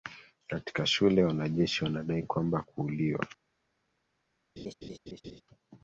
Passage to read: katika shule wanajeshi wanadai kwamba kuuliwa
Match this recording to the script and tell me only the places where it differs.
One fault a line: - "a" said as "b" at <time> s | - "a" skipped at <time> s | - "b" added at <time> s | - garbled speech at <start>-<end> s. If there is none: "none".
none